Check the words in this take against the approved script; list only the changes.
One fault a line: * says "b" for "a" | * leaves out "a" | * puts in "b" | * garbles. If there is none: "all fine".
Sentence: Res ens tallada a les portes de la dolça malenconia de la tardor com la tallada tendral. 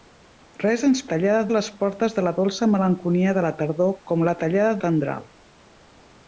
all fine